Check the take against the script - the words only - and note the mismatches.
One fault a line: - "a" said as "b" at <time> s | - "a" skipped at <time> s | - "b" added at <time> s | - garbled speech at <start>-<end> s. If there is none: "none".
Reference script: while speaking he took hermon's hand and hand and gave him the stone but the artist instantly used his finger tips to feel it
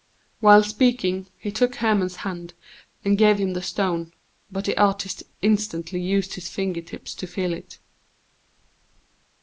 - "hand and" skipped at 3.2 s